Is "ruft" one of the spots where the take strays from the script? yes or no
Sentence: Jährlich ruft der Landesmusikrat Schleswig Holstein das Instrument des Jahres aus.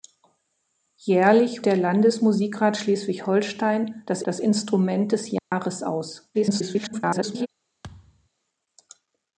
yes